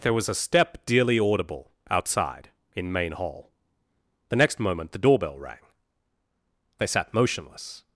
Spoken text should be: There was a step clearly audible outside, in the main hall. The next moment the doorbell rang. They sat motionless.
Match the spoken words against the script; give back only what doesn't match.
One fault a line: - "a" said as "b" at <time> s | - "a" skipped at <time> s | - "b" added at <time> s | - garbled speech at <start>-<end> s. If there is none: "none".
- "clearly" said as "dearly" at 0.9 s
- "the" skipped at 2.9 s